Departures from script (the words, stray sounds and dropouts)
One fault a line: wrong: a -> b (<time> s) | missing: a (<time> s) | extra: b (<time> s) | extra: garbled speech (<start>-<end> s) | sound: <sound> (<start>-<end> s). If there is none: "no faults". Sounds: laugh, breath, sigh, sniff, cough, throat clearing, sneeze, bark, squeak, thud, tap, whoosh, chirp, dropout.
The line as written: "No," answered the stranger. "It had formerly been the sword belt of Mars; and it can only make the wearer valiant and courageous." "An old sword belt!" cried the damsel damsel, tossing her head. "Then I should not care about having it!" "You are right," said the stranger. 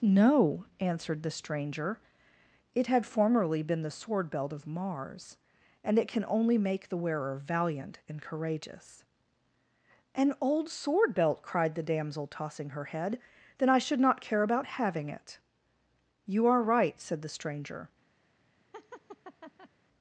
missing: damsel (12.2 s)
sound: laugh (18.7-19.7 s)